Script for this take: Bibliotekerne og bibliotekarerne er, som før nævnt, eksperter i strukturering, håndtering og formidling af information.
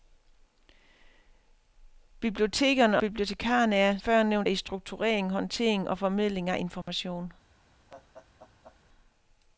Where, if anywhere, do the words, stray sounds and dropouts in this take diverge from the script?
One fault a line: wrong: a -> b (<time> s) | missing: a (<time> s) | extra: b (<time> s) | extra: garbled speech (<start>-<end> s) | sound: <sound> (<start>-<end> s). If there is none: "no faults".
missing: og (3.0 s)
missing: som (4.0 s)
missing: eksperter (4.5 s)
sound: dropout (6.8-6.9 s)
sound: laugh (7.9-8.8 s)